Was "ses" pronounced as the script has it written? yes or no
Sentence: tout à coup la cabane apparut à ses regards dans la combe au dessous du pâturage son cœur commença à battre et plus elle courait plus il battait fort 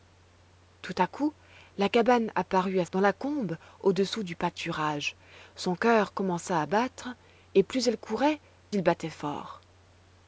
no